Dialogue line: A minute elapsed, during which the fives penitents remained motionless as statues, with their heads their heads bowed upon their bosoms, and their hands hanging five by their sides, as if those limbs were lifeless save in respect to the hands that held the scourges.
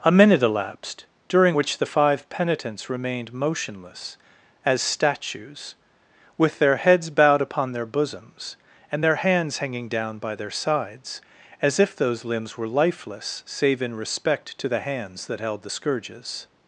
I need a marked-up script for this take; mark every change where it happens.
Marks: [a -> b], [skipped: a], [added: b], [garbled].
A minute elapsed, during which the [fives -> five] penitents remained motionless as statues, with their heads [skipped: their heads] bowed upon their bosoms, and their hands hanging [five -> down] by their sides, as if those limbs were lifeless save in respect to the hands that held the scourges.